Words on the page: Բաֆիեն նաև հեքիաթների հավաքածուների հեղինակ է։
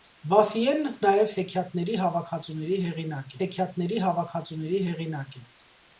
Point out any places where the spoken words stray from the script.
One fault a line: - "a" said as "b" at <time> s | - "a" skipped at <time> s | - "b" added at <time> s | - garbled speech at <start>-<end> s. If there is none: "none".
- "հեքիաթների հավաքածուների հեղինակ" added at 3.4 s